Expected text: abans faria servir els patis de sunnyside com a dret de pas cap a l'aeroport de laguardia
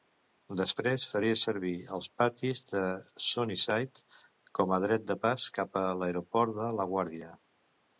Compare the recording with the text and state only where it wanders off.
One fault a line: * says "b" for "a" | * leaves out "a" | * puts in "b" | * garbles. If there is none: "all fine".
* says "després" for "abans"